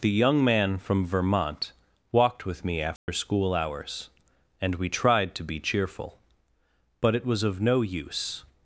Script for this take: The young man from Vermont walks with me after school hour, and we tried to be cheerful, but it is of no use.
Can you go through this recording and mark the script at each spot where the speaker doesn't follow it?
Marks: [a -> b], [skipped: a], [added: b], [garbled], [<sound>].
The young man from Vermont [walks -> walked] with me after [dropout] school [hour, -> hours] and we tried to be cheerful, but it [is -> was] of no use.